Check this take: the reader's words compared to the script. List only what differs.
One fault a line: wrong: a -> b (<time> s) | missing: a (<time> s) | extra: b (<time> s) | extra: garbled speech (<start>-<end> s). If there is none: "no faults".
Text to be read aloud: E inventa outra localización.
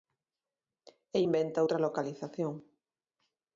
no faults